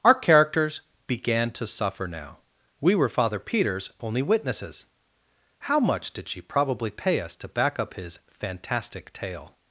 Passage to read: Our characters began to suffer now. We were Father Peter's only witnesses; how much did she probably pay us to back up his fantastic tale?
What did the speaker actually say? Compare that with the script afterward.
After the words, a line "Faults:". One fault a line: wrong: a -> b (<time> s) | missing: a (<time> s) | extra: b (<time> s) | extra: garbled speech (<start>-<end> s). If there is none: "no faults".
Our characters began to suffer now. We were Father Peter's only witnesses; how much did she probably pay us to back up his fantastic tale?
Faults:
no faults